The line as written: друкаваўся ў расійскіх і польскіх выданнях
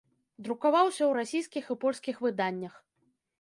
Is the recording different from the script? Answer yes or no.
no